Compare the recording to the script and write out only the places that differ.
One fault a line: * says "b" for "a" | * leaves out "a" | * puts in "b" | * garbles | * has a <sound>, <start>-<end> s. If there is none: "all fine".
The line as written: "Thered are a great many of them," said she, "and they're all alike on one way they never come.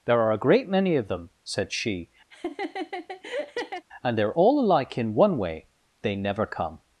* says "There" for "Thered"
* has a laugh, 2.3-3.9 s
* says "in" for "on"